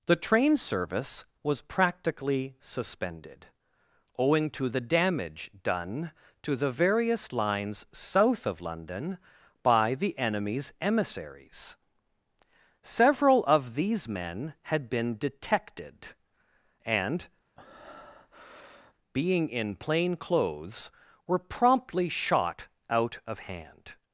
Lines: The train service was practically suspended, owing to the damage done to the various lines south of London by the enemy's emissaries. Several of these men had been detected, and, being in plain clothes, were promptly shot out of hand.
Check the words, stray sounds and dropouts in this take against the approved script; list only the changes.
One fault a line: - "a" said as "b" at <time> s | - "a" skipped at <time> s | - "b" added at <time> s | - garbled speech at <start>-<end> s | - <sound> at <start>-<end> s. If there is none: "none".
- breath at 17.6-18.9 s